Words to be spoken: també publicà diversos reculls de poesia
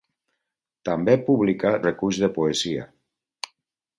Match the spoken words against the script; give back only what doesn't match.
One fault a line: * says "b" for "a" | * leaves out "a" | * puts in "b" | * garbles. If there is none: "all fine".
* leaves out "diversos"